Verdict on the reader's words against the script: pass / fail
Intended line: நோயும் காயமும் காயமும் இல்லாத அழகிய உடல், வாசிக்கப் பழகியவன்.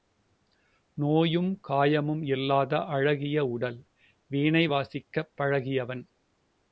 fail